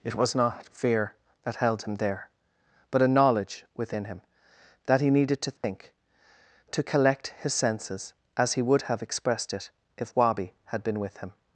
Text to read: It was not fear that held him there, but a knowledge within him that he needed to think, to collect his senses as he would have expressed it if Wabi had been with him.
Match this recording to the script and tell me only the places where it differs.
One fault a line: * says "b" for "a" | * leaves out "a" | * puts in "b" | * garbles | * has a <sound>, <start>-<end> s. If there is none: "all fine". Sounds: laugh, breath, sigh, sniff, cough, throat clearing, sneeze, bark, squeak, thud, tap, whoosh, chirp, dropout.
* has a dropout, 5.6-5.6 s